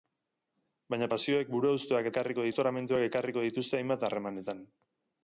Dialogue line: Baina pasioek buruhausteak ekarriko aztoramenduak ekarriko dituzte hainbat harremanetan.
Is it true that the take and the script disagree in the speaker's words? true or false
false